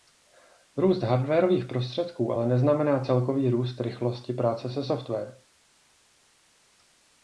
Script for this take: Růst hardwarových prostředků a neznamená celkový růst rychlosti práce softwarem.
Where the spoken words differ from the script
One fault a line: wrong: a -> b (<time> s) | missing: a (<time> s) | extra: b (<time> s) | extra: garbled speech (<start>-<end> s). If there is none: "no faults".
wrong: a -> ale (2.3 s)
extra: se (4.7 s)